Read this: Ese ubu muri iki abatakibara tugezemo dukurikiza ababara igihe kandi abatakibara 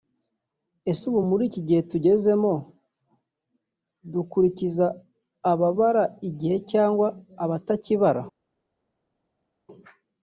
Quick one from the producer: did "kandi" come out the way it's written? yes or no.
no